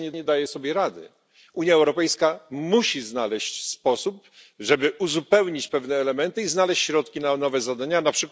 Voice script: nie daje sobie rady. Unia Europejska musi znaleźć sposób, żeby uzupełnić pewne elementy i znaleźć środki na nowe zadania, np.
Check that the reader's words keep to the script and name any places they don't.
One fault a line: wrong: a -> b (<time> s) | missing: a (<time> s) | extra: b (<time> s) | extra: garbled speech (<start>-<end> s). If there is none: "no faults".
extra: nie (0.1 s)